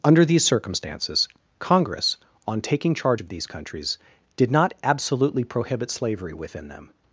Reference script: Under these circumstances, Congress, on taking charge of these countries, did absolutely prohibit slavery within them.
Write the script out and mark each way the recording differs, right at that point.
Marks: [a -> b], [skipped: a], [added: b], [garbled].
Under these circumstances, Congress, on taking charge of these countries, did [added: not] absolutely prohibit slavery within them.